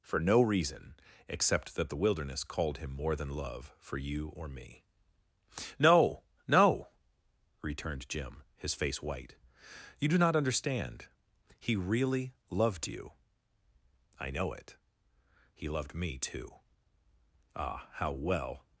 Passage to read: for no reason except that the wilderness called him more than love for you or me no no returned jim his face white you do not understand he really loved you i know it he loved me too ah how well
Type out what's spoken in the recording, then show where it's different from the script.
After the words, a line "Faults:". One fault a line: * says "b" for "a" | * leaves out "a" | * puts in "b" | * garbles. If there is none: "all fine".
for no reason except that the wilderness called him more than love for you or me no no returned jim his face white you do not understand he really loved you i know it he loved me too ah how well
Faults:
all fine